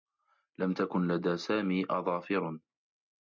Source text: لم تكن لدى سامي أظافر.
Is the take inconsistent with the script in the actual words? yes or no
no